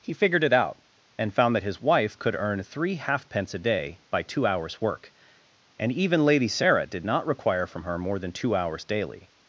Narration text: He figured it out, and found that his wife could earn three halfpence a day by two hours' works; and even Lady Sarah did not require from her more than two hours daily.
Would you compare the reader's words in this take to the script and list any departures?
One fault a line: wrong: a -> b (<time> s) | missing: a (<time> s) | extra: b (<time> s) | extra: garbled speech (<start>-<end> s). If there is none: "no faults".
wrong: works -> work (4.8 s)